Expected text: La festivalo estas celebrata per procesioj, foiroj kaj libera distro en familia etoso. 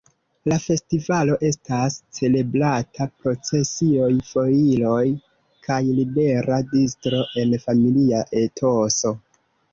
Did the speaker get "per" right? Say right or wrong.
wrong